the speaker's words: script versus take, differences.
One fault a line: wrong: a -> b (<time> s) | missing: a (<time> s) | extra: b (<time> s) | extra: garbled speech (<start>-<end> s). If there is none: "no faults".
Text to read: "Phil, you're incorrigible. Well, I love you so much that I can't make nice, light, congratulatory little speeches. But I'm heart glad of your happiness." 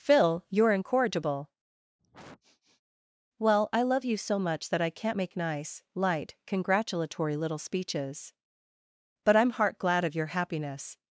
no faults